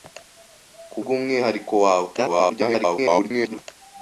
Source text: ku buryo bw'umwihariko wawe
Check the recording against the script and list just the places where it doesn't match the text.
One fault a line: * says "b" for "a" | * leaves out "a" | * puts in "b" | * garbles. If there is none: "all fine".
* leaves out "buryo"
* garbles